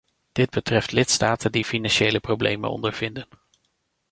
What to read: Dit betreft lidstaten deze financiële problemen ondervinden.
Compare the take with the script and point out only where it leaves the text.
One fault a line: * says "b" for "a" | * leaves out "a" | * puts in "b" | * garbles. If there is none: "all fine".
* says "die" for "deze"